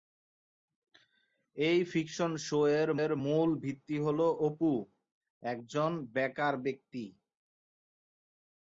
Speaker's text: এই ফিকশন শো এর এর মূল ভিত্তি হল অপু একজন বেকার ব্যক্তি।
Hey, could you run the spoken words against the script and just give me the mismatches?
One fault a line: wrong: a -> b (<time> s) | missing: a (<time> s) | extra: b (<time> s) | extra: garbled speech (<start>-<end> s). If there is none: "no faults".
no faults